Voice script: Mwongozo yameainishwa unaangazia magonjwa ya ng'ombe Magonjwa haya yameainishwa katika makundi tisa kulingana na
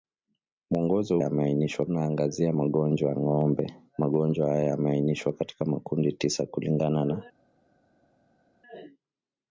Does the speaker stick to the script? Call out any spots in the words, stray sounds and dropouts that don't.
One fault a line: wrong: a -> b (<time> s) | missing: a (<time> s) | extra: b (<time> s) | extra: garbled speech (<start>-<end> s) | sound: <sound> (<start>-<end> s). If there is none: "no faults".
no faults